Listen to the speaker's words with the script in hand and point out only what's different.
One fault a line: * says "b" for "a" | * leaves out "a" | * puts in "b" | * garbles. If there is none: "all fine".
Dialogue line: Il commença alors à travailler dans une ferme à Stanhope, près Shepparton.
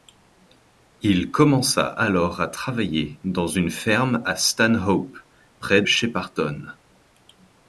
all fine